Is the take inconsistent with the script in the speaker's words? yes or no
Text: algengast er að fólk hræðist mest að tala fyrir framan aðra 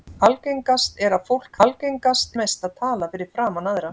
yes